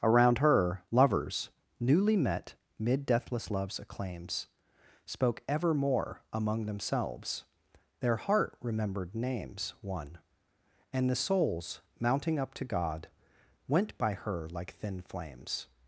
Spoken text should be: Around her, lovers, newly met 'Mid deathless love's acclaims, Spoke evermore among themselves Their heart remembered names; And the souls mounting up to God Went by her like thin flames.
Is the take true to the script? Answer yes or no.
no